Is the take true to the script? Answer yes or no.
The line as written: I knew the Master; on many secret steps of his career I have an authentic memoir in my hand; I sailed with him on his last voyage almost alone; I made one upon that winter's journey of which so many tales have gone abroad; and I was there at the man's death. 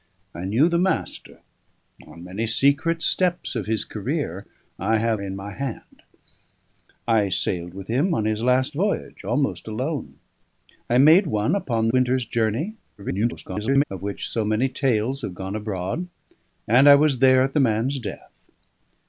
no